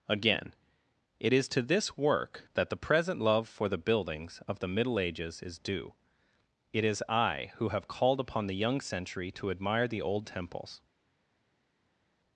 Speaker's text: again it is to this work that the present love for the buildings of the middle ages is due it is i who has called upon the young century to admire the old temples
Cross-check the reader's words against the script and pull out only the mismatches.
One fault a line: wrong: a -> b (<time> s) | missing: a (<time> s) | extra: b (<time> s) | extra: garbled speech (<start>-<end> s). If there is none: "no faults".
wrong: has -> have (7.7 s)